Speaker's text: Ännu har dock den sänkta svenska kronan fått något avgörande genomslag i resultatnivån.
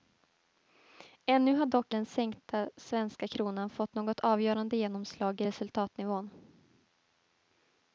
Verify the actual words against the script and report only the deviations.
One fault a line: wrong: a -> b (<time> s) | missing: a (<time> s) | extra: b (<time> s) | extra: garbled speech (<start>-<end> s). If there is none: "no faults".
no faults